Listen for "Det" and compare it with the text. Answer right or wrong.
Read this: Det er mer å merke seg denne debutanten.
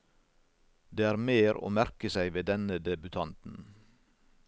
right